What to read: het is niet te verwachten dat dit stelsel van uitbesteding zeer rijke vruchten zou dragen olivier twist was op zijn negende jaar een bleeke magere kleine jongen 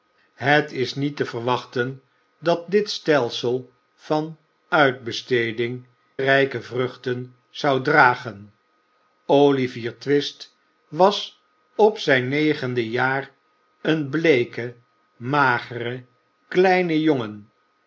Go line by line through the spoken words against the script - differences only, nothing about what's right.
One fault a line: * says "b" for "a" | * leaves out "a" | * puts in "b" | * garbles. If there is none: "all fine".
* leaves out "zeer"